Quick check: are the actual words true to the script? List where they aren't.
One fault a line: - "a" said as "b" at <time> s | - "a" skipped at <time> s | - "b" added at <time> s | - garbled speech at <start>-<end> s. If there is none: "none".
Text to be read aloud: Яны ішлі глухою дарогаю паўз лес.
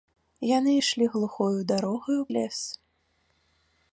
- "паўз" skipped at 2.2 s